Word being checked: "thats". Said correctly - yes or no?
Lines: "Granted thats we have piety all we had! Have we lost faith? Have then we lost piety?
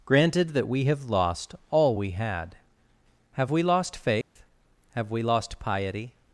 no